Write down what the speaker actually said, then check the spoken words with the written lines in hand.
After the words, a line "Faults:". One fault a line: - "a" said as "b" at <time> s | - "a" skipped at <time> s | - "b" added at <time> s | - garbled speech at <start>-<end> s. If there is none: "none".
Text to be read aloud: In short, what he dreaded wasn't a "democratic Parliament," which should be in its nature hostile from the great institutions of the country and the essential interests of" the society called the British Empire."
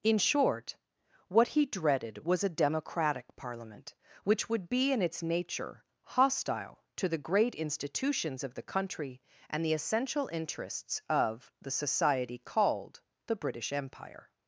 In short, what he dreaded was a "democratic Parliament," which would be in its nature hostile to the great institutions of the country and the essential interests of" the society called the British Empire."
Faults:
- "wasn't" said as "was" at 2.2 s
- "should" said as "would" at 4.5 s
- "from" said as "to" at 6.9 s